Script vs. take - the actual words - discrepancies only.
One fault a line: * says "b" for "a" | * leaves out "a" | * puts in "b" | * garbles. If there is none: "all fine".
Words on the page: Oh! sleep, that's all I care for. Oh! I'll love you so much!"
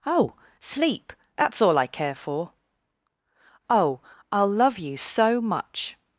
all fine